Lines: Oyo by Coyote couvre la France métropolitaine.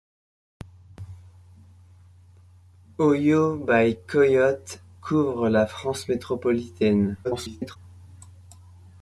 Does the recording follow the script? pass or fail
fail